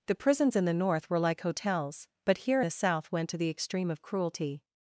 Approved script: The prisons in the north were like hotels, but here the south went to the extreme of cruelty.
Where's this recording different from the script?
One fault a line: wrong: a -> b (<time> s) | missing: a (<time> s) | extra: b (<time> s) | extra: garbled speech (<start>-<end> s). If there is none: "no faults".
no faults